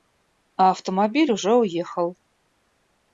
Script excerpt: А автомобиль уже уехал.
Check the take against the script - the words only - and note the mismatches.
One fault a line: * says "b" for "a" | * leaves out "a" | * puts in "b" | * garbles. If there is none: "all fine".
all fine